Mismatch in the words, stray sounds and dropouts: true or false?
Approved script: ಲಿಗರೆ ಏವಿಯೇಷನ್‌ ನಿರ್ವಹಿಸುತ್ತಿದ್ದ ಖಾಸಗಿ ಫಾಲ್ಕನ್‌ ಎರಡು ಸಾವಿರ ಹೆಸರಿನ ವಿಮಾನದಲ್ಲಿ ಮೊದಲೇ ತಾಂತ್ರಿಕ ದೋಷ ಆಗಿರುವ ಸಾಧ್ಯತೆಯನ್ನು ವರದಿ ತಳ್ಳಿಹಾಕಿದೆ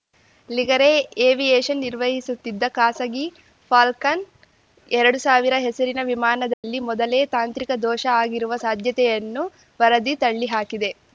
true